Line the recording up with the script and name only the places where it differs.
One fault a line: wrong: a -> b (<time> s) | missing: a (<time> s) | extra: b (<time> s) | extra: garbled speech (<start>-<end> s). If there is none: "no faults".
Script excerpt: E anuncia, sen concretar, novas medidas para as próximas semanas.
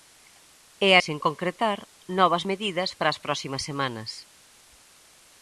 missing: anuncia (0.9 s)